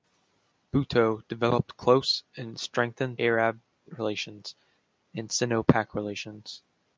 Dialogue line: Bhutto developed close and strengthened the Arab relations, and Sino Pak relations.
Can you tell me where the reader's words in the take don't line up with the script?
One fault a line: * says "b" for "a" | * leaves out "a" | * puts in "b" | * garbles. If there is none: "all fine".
* leaves out "the"